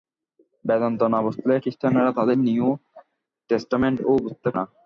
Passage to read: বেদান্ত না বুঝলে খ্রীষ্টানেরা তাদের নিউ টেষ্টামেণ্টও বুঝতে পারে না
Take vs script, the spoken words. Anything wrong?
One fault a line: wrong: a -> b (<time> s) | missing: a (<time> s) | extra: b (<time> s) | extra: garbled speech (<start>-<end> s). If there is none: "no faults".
missing: পারে (4.5 s)